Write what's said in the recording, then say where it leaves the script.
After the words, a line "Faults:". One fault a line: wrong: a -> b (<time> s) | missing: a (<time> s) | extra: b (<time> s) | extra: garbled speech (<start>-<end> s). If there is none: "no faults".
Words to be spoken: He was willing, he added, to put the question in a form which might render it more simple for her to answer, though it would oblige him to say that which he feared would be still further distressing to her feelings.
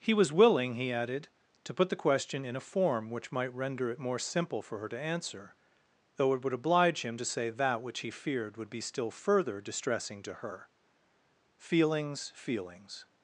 He was willing, he added, to put the question in a form which might render it more simple for her to answer, though it would oblige him to say that which he feared would be still further distressing to her feelings feelings.
Faults:
extra: feelings (12.3 s)